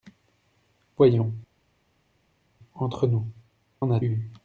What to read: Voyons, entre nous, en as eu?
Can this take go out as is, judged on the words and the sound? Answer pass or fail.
pass